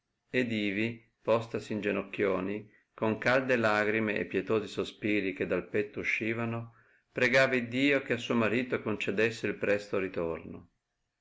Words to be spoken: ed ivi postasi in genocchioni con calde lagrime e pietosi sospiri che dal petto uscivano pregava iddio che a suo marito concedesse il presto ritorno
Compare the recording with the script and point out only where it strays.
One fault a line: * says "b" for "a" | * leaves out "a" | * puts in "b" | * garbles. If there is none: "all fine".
all fine